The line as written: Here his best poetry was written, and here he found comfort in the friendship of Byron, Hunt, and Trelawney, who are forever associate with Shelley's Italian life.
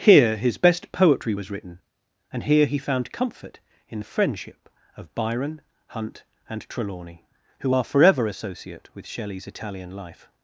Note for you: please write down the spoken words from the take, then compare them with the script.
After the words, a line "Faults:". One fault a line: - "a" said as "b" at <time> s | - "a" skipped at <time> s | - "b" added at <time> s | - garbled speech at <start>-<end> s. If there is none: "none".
Here his best poetry was written, and here he found comfort in the friendship of Byron, Hunt, and Trelawney, who are forever associate with Shelley's Italian life.
Faults:
none